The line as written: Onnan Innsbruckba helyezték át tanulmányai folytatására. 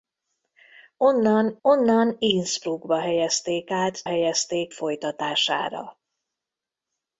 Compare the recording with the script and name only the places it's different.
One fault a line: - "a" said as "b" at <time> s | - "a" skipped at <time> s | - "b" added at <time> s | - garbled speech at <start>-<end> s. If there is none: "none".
- "onnan" added at 1.6 s
- "tanulmányai" said as "helyezték" at 4.0 s